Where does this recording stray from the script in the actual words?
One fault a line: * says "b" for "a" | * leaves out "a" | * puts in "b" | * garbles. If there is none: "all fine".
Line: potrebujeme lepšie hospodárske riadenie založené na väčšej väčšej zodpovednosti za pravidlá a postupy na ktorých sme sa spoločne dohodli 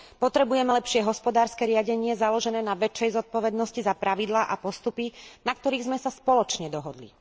* leaves out "väčšej"